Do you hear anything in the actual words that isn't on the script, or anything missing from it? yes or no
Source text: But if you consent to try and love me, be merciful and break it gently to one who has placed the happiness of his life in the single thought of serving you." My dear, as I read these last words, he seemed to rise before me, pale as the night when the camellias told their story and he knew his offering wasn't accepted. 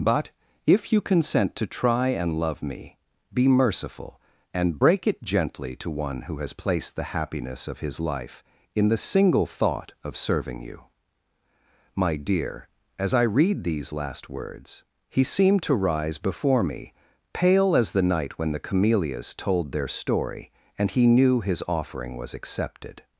yes